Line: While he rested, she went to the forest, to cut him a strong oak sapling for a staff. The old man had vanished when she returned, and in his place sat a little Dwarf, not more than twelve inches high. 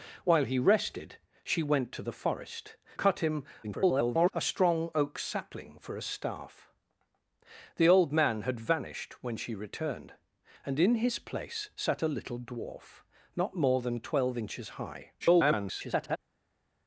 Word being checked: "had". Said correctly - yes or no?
yes